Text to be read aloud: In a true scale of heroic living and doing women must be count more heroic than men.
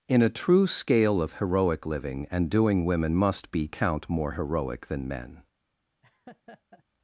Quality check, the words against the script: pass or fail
pass